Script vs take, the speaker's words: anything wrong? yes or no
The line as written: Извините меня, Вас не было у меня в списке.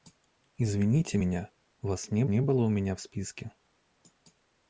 yes